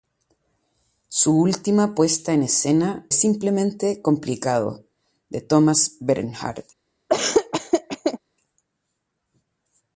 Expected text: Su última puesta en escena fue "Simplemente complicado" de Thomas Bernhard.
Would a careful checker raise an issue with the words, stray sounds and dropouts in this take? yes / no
yes